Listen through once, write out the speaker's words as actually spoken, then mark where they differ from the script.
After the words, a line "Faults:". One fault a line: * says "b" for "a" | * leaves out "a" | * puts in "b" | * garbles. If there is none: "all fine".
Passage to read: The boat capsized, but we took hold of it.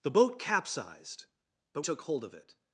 The boat capsized, but took hold of it.
Faults:
* leaves out "we"